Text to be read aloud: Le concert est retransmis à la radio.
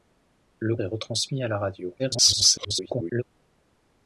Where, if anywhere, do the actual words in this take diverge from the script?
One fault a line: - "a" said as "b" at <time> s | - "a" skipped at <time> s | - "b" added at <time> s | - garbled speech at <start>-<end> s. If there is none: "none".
- "concert" skipped at 0.8 s
- garbled speech at 2.0-3.2 s